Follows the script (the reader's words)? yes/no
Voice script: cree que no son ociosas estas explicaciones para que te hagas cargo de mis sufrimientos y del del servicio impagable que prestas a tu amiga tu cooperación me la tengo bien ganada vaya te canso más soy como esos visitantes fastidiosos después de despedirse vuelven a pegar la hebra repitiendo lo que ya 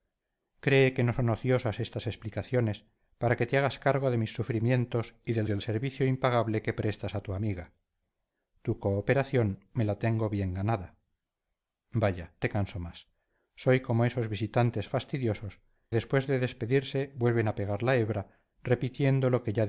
yes